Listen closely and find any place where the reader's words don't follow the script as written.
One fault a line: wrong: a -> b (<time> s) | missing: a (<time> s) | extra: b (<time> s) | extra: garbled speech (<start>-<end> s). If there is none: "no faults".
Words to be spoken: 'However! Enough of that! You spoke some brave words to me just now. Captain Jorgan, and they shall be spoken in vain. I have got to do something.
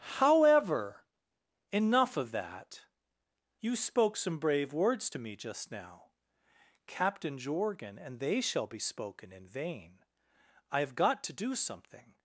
no faults